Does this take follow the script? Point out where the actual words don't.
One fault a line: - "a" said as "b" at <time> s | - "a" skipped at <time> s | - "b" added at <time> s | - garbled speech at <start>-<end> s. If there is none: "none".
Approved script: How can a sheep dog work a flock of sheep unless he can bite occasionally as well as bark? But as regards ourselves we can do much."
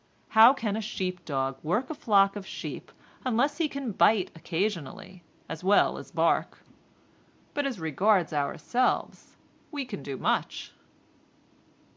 none